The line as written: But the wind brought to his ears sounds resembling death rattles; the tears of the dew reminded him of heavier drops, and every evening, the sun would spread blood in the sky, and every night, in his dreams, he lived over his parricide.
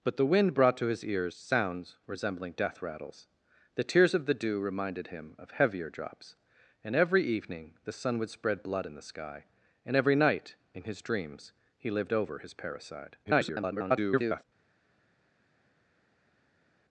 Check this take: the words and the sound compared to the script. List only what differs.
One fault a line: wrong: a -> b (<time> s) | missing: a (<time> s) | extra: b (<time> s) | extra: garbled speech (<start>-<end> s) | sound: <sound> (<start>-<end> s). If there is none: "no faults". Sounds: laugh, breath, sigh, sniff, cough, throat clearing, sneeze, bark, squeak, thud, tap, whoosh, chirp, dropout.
extra: garbled speech (13.2-14.4 s)